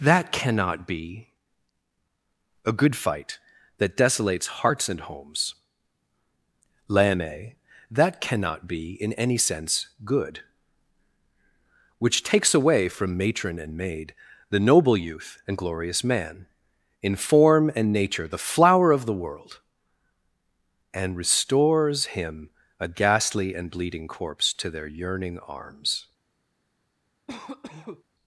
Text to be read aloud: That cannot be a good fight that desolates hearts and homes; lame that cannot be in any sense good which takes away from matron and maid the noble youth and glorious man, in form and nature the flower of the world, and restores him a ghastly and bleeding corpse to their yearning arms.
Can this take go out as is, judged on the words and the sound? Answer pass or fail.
fail